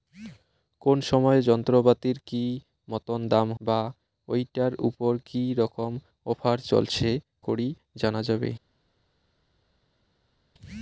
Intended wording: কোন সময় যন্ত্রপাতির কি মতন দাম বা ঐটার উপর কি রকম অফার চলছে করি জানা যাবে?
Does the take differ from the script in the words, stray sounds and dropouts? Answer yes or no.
no